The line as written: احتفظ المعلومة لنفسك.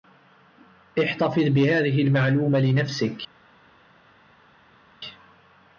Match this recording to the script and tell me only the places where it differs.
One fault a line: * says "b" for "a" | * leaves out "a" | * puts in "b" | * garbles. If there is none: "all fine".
* puts in "بهذه"